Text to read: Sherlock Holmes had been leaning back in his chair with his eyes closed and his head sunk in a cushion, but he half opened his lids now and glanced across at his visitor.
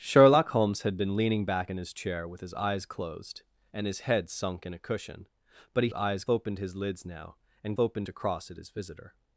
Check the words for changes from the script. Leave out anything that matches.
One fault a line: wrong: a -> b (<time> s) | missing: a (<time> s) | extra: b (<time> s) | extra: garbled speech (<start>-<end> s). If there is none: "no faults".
wrong: half -> eyes (5.9 s)
wrong: glanced -> opened (7.8 s)